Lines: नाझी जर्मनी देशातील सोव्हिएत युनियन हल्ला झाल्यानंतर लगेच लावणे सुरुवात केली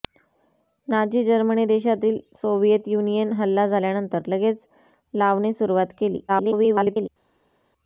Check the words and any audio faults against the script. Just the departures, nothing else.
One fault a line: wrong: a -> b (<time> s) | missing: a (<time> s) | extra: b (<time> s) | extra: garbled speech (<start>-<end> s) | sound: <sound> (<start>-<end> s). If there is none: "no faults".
extra: garbled speech (6.3-7.1 s)